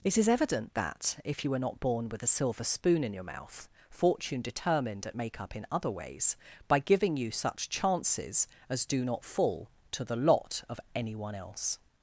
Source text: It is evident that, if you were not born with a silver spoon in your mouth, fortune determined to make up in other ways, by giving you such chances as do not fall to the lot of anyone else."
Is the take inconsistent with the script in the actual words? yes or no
yes